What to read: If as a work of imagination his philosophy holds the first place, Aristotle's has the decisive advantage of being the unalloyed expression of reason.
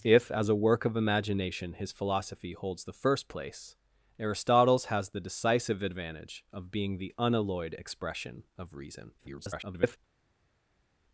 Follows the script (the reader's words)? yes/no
no